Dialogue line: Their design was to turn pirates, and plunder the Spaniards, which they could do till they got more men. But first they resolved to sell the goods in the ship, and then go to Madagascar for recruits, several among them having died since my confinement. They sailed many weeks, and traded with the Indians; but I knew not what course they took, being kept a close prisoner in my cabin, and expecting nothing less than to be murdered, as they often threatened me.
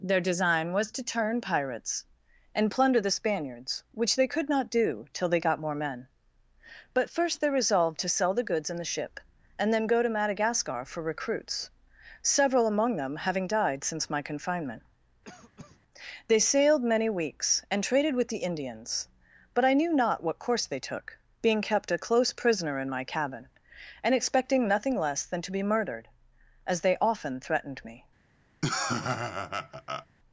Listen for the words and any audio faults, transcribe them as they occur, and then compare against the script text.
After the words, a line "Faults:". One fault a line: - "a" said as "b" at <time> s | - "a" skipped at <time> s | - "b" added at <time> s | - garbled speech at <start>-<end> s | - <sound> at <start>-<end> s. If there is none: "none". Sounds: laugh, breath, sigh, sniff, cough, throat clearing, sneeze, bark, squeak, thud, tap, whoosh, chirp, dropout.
Their design was to turn pirates, and plunder the Spaniards, which they could not do till they got more men. But first they resolved to sell the goods in the ship, and then go to Madagascar for recruits, several among them having died since my confinement. They sailed many weeks, and traded with the Indians; but I knew not what course they took, being kept a close prisoner in my cabin, and expecting nothing less than to be murdered, as they often threatened me.
Faults:
- "not" added at 4.5 s
- cough at 15.2-15.8 s
- laugh at 28.6-30.1 s